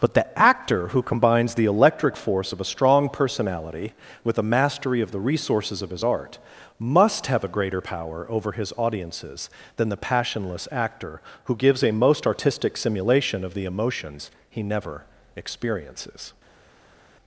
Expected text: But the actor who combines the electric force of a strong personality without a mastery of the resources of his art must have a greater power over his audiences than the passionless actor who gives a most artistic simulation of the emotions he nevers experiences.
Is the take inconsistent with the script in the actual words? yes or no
yes